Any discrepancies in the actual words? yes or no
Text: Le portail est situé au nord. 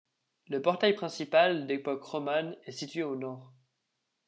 yes